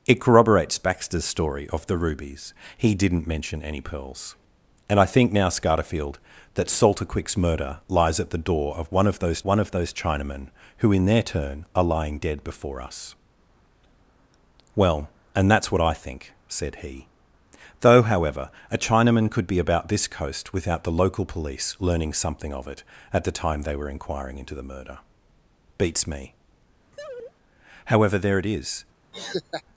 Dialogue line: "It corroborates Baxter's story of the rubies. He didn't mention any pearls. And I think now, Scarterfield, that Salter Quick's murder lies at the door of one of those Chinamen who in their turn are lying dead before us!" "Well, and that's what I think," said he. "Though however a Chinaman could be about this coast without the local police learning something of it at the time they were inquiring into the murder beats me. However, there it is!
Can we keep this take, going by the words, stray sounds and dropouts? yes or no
no